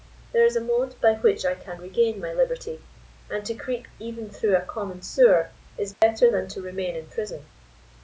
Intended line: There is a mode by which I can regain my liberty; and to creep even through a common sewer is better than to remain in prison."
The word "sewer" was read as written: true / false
true